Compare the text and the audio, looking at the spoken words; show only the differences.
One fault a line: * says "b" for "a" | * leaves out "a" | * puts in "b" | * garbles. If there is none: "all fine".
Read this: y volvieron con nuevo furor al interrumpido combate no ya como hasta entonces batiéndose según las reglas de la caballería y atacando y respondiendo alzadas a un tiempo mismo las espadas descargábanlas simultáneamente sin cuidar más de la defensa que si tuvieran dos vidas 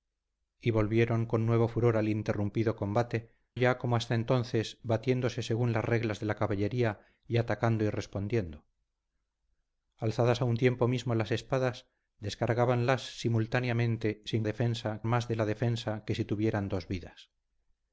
* leaves out "no"
* says "defensa" for "cuidar"